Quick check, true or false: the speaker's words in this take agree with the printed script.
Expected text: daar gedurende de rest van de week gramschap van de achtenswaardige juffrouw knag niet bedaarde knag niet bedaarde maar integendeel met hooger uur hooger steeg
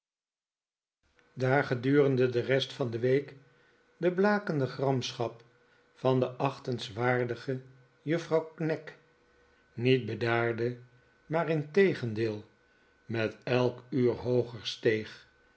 false